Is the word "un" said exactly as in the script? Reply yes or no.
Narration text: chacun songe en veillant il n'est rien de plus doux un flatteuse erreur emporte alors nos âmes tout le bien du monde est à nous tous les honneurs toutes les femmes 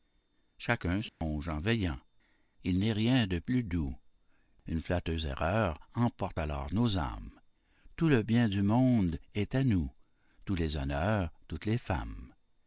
no